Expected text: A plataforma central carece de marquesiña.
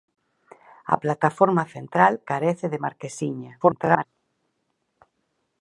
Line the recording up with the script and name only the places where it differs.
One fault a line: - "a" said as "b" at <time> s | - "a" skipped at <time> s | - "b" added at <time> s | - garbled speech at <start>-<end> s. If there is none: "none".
- garbled speech at 3.6-4.1 s